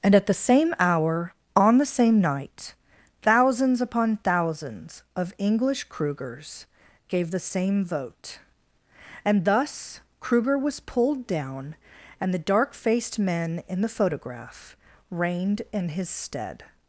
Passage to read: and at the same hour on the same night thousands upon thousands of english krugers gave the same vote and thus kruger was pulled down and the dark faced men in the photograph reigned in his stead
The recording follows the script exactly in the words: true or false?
true